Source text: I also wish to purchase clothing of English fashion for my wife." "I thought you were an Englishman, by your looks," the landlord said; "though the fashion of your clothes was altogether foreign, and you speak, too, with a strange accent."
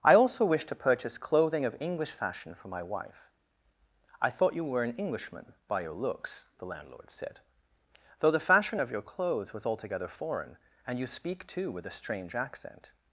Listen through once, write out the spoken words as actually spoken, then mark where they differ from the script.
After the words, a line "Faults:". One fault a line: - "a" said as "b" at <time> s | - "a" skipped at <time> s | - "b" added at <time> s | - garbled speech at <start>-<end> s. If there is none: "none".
I also wish to purchase clothing of English fashion for my wife." "I thought you were an Englishman, by your looks," the landlord said; "though the fashion of your clothes was altogether foreign, and you speak, too, with a strange accent."
Faults:
none